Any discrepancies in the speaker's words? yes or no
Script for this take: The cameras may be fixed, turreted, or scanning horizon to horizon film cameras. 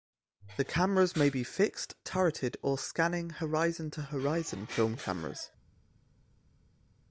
no